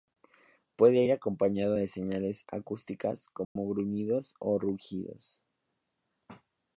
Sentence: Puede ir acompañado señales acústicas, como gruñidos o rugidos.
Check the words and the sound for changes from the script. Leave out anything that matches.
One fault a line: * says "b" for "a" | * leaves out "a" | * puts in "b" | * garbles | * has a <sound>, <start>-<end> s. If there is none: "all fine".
* puts in "de"
* has a dropout, 3.4-3.6 s